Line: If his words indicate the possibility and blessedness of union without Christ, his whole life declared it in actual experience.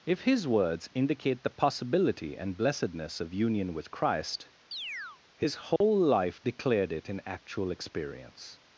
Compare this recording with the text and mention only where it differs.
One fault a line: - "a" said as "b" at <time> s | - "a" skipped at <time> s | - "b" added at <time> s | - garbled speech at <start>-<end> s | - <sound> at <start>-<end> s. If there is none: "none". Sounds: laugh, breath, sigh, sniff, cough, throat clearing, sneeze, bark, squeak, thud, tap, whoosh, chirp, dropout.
- "without" said as "with" at 3.8 s
- chirp at 4.7-5.2 s
- dropout at 5.8-5.8 s